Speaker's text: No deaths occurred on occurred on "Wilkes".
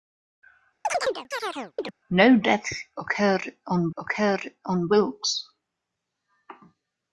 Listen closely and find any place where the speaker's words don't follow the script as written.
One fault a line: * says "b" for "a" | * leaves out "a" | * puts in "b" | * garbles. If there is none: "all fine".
all fine